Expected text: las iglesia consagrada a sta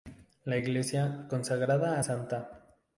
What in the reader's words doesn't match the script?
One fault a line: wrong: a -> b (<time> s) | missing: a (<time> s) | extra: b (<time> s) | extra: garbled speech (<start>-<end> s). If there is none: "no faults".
wrong: las -> la (0.5 s)